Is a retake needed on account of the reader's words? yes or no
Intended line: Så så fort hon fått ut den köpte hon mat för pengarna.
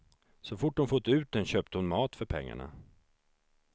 yes